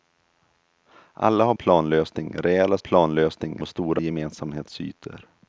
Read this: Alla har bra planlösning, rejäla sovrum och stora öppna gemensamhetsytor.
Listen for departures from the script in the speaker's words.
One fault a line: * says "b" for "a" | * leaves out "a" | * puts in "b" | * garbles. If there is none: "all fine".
* leaves out "bra"
* says "planlösning" for "sovrum"
* leaves out "öppna"